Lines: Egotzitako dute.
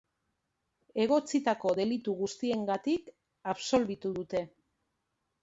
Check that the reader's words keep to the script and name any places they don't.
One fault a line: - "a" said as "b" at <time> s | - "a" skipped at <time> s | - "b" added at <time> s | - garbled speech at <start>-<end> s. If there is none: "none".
- "delitu guztiengatik absolbitu" added at 1.8 s